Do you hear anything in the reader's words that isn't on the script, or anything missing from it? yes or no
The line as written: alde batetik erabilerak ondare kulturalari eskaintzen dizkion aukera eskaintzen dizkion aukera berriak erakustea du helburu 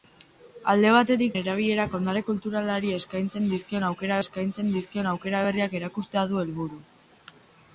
no